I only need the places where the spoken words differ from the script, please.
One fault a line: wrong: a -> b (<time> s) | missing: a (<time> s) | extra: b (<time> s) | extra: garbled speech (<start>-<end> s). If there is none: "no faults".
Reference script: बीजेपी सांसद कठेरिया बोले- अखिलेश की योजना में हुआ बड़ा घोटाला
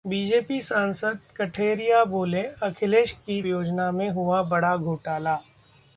no faults